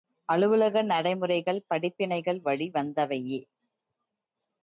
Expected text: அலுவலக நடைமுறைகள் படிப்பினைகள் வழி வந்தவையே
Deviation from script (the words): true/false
false